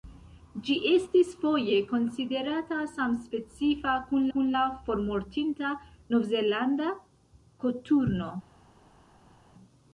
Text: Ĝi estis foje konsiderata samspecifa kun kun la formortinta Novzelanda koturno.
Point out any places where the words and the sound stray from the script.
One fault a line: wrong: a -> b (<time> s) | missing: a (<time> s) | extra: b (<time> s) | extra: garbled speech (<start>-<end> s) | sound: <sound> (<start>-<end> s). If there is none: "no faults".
no faults